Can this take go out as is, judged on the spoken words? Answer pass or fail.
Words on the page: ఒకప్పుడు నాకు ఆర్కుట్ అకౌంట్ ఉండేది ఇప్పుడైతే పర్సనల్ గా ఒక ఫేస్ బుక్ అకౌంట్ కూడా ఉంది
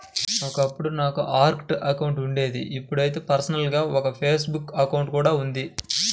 pass